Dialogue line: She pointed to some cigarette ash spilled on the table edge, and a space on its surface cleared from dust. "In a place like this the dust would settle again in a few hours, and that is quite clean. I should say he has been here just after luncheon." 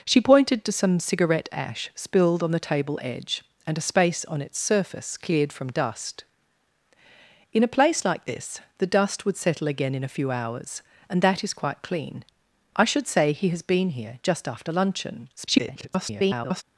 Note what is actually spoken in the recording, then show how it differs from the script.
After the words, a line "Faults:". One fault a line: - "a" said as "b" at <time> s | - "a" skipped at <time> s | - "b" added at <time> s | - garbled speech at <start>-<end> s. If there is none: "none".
She pointed to some cigarette ash spilled on the table edge, and a space on its surface cleared from dust. "In a place like this the dust would settle again in a few hours, and that is quite clean. I should say he has been here just after luncheon." [garbled]
Faults:
- garbled speech at 15.4-16.6 s